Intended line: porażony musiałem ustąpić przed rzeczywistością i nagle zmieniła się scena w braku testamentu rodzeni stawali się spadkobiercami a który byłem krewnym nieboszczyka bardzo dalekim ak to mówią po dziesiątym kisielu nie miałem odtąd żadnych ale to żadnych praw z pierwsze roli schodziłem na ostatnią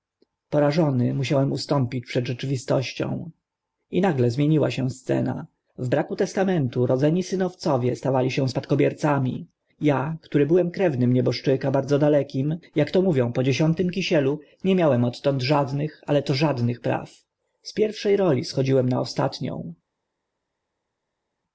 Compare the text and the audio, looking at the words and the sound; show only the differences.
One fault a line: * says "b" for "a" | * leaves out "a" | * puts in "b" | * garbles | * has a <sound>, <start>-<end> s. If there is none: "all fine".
* puts in "synowcowie"